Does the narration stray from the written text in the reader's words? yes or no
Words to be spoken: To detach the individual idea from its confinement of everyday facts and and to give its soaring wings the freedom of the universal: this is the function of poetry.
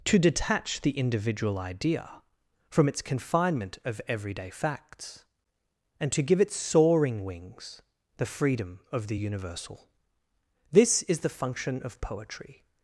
yes